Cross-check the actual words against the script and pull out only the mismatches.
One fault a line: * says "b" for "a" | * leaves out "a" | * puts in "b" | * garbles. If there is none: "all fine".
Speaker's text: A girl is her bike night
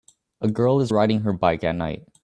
* puts in "riding"
* puts in "at"